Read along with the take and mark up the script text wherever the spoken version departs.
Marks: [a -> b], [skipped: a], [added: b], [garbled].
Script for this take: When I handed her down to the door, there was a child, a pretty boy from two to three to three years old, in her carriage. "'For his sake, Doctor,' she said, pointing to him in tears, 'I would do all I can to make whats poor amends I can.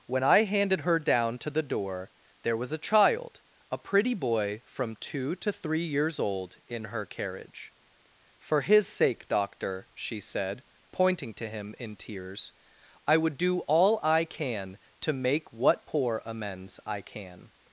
When I handed her down to the door, there was a child, a pretty boy from two to three [skipped: to three] years old, in her carriage. "'For his sake, Doctor,' she said, pointing to him in tears, 'I would do all I can to make [whats -> what] poor amends I can.